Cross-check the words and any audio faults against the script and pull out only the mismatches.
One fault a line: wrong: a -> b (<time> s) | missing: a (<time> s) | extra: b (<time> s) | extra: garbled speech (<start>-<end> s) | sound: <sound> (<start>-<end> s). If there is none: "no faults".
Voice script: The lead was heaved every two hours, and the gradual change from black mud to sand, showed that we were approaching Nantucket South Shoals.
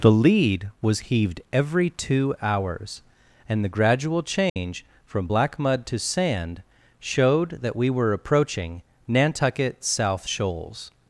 sound: dropout (4.5-4.6 s)